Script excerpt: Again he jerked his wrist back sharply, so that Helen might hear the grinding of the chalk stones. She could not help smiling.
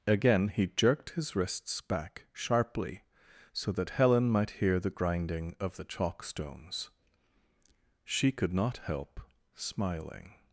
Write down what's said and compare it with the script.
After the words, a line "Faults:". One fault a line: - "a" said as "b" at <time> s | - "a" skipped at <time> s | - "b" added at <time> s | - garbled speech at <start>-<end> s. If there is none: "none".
Again he jerked his wrists back sharply, so that Helen might hear the grinding of the chalk stones. She could not help smiling.
Faults:
- "wrist" said as "wrists" at 1.4 s